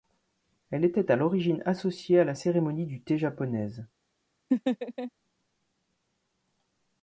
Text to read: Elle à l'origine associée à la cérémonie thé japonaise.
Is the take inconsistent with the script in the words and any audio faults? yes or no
yes